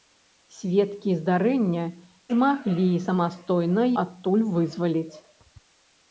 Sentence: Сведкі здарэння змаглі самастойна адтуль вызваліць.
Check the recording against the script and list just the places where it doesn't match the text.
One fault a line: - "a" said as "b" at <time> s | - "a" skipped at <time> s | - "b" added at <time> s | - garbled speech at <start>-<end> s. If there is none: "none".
none